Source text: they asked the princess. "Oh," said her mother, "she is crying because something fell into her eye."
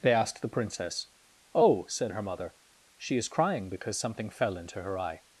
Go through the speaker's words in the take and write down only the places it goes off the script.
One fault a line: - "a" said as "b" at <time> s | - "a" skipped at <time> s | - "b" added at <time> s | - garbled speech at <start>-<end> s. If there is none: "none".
none